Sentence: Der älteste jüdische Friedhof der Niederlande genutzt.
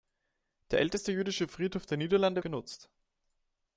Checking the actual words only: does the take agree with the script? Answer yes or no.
yes